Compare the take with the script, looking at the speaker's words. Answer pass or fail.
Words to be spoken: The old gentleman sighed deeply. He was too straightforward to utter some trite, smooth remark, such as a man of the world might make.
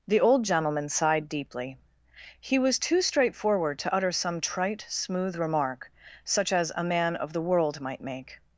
pass